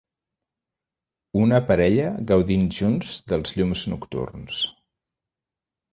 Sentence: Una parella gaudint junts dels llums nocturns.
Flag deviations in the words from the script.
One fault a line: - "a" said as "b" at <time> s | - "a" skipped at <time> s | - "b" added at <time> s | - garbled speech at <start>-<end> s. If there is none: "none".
none